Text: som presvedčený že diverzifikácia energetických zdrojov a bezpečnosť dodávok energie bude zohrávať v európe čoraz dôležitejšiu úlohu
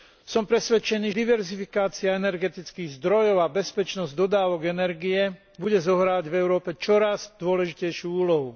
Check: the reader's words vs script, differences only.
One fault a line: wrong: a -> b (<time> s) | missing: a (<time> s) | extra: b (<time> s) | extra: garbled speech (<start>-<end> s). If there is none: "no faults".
missing: že (1.1 s)